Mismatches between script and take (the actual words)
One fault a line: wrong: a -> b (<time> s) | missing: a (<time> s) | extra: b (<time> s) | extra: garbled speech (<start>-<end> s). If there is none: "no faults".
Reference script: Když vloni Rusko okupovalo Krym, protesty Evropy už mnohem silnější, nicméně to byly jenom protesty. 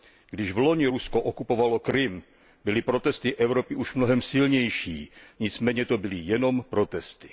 extra: byly (2.6 s)